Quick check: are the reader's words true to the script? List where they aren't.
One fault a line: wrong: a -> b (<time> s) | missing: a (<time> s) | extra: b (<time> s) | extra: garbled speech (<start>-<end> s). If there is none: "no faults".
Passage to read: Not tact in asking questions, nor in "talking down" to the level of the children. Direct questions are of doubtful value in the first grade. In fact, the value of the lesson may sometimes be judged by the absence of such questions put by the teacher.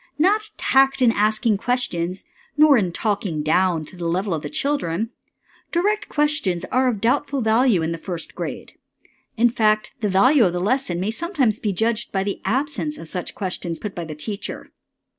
no faults